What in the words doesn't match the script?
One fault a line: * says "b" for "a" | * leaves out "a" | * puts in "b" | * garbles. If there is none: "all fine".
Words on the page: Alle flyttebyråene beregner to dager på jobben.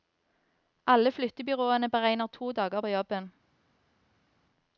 all fine